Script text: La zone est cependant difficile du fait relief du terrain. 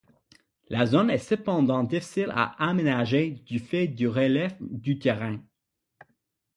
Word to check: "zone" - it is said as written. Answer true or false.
true